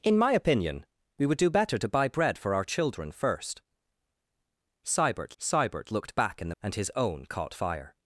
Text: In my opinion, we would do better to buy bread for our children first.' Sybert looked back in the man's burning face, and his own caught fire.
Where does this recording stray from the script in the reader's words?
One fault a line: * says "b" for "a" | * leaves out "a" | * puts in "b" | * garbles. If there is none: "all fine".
* puts in "sybert"
* leaves out "man's burning face"